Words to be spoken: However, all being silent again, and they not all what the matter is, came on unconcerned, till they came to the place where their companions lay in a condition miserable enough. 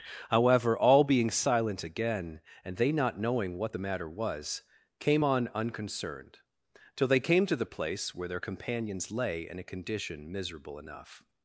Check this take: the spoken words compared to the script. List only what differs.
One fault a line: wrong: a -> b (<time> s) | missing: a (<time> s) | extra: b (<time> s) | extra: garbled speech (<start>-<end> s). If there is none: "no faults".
wrong: all -> knowing (3.2 s)
wrong: is -> was (4.1 s)